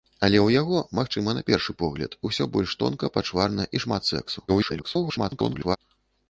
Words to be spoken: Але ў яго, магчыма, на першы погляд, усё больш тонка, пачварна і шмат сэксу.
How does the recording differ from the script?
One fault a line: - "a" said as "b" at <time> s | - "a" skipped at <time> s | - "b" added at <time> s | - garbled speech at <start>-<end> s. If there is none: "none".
- garbled speech at 4.5-5.8 s